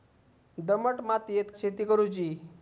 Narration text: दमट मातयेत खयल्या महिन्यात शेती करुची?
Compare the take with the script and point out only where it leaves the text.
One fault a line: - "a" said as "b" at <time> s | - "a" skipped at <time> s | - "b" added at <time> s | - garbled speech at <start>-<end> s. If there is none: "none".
- "खयल्या महिन्यात" skipped at 1.5 s